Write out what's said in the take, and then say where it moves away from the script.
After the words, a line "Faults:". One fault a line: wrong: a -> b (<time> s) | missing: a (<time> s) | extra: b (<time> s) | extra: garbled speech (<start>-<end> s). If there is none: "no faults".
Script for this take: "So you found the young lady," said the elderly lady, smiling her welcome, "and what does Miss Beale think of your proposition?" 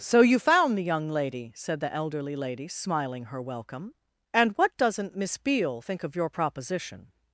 "So you found the young lady," said the elderly lady, smiling her welcome, "and what doesn't Miss Beale think of your proposition?"
Faults:
wrong: does -> doesn't (4.8 s)